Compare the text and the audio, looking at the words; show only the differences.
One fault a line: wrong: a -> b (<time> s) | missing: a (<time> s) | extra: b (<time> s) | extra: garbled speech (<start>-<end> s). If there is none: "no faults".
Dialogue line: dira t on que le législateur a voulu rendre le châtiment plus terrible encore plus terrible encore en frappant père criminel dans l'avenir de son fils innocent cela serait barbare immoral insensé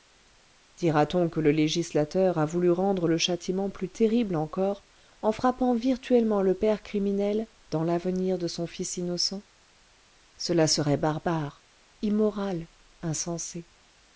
wrong: plus terrible encore en frappant -> en frappant virtuellement le (5.2 s)